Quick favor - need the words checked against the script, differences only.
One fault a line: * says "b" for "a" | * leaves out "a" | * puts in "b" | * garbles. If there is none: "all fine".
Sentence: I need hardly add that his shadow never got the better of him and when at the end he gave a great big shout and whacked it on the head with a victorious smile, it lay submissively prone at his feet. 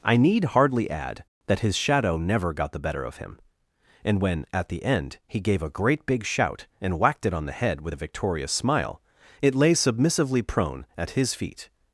all fine